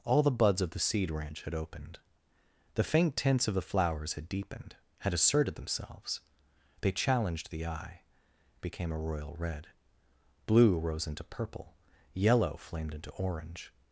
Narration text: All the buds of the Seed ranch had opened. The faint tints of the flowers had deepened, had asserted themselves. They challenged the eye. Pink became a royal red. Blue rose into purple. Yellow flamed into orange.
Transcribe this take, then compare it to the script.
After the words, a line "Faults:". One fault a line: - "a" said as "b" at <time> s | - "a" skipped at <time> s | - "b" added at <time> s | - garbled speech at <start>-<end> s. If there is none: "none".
All the buds of the Seed ranch had opened. The faint tints of the flowers had deepened, had asserted themselves. They challenged the eye. Became a royal red. Blue rose into purple. Yellow flamed into orange.
Faults:
- "Pink" skipped at 8.0 s